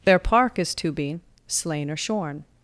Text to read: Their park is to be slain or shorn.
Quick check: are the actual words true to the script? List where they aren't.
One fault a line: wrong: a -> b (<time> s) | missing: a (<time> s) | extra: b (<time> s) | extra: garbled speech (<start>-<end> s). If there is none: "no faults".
no faults